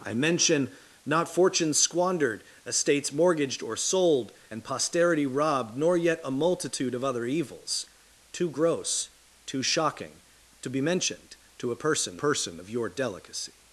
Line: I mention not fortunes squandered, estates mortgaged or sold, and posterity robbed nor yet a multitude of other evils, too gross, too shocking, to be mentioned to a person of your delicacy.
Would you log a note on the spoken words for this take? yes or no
yes